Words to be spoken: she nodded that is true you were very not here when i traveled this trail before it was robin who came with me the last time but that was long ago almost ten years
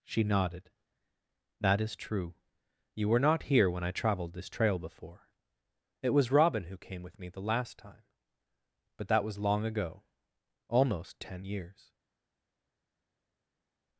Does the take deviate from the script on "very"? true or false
true